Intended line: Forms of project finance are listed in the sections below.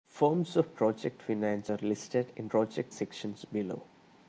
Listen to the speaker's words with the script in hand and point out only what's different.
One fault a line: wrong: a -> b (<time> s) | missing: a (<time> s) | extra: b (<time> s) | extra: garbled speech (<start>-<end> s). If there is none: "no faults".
wrong: the -> project (2.5 s)